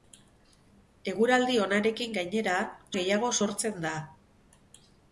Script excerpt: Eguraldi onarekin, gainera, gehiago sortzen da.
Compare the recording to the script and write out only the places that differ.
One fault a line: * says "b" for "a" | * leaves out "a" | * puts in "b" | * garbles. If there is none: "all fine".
all fine